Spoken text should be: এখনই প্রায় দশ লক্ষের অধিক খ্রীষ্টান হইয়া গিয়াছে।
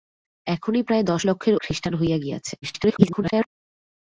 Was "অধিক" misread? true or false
true